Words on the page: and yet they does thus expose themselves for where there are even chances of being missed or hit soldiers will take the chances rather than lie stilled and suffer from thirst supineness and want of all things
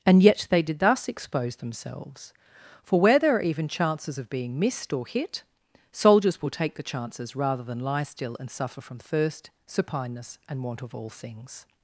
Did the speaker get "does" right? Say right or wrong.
wrong